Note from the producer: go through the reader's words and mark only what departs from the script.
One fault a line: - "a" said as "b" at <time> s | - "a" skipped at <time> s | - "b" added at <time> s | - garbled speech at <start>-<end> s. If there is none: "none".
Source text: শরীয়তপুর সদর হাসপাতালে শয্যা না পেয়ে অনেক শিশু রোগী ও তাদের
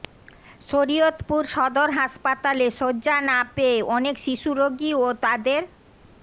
none